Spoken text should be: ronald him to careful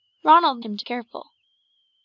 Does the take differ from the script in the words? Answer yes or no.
no